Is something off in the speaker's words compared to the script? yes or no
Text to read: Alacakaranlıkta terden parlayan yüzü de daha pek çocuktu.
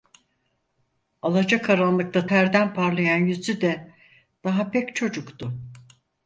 no